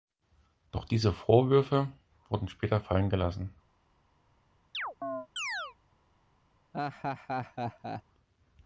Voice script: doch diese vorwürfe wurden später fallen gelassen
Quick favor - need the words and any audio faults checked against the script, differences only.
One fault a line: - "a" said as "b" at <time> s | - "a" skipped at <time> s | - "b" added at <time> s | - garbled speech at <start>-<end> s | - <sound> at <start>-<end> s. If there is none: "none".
- chirp at 4.7-5.8 s
- laugh at 6.7-8.0 s